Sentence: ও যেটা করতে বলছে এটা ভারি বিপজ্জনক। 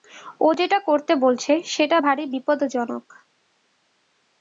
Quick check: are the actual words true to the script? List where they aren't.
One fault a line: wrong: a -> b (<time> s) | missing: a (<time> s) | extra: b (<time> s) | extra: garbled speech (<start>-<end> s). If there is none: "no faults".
wrong: এটা -> সেটা (1.6 s)